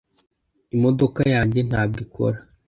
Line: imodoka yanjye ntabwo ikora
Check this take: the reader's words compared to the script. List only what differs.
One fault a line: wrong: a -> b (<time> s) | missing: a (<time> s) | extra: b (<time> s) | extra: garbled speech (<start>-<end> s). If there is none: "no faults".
no faults